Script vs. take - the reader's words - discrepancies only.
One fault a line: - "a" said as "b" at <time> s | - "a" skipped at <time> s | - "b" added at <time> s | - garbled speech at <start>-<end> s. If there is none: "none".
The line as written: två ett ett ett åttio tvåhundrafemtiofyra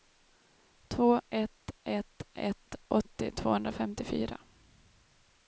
none